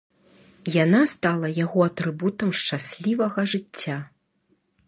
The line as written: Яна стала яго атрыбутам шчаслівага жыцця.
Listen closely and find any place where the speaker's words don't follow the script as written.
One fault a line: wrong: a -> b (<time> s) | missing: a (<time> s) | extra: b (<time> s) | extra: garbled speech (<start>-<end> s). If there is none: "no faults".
no faults